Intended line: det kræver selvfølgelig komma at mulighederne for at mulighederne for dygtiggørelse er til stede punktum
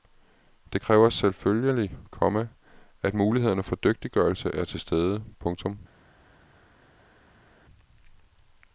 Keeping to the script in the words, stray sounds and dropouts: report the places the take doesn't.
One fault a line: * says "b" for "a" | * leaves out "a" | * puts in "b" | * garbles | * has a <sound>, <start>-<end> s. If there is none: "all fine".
* leaves out "at mulighederne for"